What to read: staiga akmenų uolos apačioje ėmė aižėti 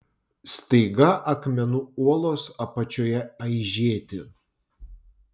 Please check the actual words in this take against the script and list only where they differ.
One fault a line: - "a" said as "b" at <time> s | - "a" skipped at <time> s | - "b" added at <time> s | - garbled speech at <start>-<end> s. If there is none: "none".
- "ėmė" skipped at 3.2 s